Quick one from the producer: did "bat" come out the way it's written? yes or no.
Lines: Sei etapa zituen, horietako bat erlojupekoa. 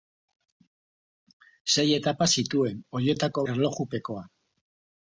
no